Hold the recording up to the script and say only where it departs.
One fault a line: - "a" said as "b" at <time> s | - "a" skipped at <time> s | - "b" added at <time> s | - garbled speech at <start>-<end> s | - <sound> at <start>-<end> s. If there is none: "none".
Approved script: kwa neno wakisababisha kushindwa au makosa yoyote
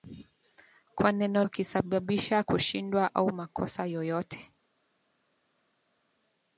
none